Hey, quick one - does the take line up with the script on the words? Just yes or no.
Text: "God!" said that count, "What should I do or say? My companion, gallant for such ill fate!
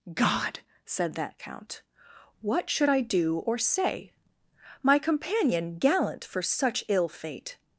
yes